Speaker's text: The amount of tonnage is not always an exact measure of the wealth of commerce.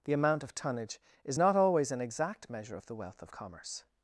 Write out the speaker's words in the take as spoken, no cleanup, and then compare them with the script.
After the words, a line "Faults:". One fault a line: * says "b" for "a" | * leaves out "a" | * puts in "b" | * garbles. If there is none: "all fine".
The amount of tonnage is not always an exact measure of the wealth of commerce.
Faults:
all fine